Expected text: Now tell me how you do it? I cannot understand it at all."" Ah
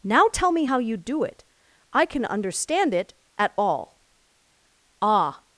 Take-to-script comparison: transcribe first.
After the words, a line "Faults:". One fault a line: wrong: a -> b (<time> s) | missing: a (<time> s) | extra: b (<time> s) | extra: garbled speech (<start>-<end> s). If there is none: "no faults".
Now tell me how you do it? I can understand it at all."" Ah
Faults:
wrong: cannot -> can (2.0 s)